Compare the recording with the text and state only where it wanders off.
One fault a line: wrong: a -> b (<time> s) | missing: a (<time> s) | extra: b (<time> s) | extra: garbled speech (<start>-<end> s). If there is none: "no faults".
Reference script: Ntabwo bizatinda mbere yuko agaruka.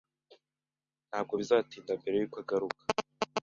no faults